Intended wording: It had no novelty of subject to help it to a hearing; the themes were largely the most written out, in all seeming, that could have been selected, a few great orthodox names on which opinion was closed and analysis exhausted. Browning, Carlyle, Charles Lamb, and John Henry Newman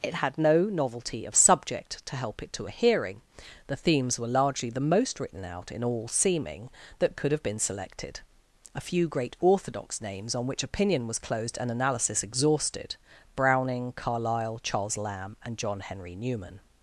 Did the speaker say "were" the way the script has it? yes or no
yes